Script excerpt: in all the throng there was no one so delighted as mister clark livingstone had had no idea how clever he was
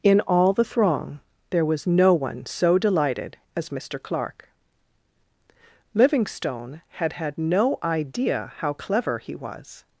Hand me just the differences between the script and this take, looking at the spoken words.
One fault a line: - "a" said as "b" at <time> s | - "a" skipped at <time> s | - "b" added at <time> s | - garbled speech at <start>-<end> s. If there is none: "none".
none